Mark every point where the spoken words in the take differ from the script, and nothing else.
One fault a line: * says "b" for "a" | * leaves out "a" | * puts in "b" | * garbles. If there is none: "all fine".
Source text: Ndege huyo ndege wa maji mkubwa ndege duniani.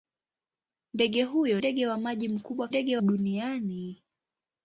all fine